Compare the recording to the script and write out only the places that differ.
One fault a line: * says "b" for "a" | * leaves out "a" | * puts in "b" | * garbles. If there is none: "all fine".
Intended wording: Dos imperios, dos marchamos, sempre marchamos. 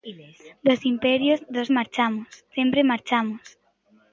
all fine